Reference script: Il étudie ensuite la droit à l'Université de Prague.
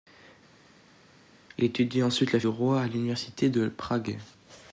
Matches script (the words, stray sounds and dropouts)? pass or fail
pass